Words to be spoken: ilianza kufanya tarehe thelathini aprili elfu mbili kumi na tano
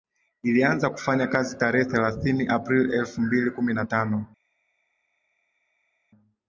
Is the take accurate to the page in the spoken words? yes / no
no